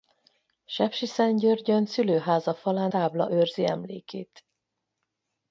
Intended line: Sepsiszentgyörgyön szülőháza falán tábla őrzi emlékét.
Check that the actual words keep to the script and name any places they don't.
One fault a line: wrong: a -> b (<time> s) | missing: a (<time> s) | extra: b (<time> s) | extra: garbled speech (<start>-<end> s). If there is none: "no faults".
no faults